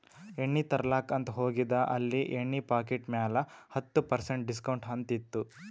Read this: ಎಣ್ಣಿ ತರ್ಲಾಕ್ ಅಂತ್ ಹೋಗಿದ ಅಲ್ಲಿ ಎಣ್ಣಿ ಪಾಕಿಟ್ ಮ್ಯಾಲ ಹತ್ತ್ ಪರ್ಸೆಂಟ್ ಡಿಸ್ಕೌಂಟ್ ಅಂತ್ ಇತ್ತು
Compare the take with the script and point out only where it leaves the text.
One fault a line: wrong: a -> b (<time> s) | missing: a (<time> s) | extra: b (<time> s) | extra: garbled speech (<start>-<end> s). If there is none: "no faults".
no faults